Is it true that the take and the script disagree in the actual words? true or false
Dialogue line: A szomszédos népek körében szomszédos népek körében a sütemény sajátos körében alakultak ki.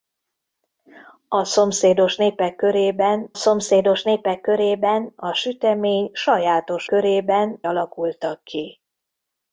false